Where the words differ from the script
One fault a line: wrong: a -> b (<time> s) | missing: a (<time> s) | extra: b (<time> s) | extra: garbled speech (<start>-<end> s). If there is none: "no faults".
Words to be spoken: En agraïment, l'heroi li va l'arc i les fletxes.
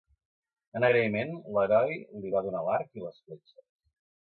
extra: donar (2.5 s)